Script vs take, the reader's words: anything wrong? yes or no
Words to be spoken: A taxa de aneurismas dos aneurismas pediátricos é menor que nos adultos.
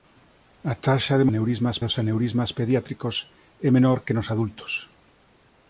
no